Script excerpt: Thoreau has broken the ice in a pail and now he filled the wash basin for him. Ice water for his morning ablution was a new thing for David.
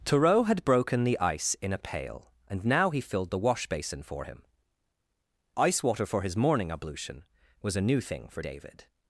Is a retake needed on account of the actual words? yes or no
yes